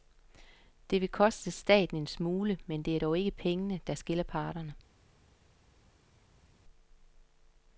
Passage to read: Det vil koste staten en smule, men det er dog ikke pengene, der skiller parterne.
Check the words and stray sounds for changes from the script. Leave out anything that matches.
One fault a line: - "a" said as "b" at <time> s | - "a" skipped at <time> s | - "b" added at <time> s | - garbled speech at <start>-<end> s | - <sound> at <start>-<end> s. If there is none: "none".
none